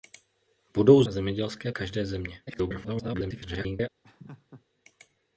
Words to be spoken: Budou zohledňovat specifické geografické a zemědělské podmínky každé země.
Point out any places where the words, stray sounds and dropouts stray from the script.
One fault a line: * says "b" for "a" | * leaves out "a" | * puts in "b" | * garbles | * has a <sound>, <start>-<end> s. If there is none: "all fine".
* leaves out "zohledňovat specifické geografické"
* leaves out "podmínky"
* garbles
* has a laugh, 4.0-4.6 s